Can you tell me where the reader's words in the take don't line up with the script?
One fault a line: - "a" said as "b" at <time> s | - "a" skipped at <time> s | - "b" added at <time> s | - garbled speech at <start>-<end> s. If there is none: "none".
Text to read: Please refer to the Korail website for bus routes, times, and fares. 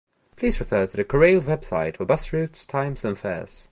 none